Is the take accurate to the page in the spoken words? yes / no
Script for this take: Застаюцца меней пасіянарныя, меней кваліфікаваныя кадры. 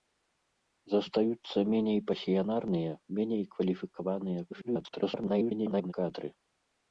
no